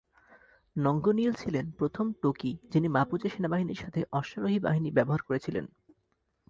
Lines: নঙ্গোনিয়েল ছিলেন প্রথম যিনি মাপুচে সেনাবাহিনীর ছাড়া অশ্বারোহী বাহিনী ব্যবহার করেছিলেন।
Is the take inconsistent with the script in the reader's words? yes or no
yes